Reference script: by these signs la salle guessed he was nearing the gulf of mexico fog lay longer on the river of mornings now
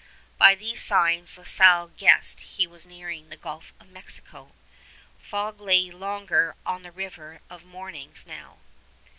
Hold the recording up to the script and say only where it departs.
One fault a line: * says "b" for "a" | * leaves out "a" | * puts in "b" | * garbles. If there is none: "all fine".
all fine